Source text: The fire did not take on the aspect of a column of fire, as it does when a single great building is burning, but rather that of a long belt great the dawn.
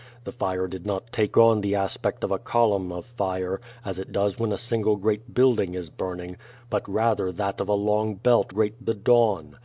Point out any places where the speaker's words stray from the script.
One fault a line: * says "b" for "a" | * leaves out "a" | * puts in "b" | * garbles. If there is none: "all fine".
all fine